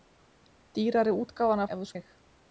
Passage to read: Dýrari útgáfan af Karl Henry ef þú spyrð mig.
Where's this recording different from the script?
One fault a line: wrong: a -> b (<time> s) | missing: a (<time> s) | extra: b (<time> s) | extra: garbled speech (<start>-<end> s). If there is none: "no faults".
missing: af Karl Henry (1.6 s)
missing: spyrð (1.9 s)